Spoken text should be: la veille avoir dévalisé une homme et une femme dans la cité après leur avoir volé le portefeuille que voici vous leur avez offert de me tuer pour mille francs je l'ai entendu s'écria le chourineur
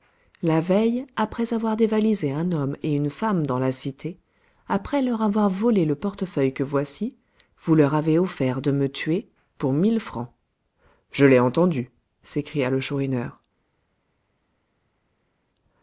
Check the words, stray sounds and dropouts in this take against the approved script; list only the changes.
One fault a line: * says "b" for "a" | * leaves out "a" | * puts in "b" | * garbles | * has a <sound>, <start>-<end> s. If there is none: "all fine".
* puts in "après"
* says "un" for "une"